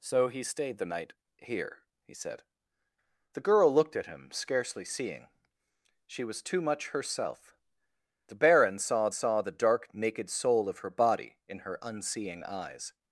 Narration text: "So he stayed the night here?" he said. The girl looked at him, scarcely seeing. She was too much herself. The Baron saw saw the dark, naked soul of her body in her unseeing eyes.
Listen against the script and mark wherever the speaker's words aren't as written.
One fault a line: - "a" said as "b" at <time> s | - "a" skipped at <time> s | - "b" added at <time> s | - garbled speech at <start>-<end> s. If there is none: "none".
none